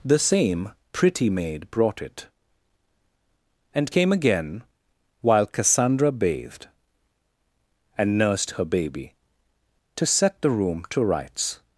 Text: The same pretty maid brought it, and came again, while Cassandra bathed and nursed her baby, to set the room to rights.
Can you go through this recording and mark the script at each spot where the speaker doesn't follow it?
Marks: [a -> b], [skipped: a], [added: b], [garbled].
The same pretty maid brought it, and came again, while Cassandra bathed and nursed her baby, to set the room to rights.